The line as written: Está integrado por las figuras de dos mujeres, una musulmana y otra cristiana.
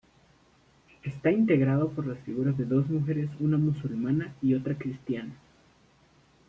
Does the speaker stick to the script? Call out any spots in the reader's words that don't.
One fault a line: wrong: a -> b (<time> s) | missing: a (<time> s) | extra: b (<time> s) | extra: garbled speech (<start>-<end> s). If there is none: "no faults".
no faults